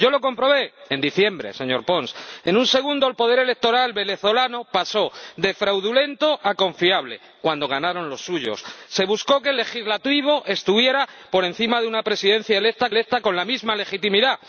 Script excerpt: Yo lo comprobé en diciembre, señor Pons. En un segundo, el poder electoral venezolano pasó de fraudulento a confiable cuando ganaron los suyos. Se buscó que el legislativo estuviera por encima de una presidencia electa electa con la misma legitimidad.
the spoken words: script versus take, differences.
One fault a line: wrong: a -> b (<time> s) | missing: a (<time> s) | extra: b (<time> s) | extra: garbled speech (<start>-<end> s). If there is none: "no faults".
no faults